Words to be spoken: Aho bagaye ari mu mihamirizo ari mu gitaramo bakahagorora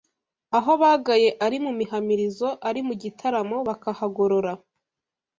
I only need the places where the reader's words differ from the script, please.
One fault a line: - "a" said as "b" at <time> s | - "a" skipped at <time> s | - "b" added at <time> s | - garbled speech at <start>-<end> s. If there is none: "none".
none